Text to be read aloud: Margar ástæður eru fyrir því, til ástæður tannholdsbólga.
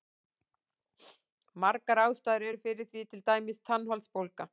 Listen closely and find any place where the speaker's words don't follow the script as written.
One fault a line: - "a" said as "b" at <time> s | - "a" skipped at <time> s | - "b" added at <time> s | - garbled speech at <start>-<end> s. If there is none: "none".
- "ástæður" said as "dæmis" at 3.3 s